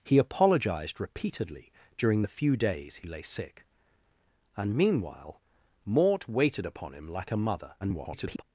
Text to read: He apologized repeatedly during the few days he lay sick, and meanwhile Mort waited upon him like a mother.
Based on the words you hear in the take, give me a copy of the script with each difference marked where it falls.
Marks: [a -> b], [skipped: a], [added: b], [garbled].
He apologized repeatedly during the few days he lay sick, and meanwhile Mort waited upon him like a mother. [garbled]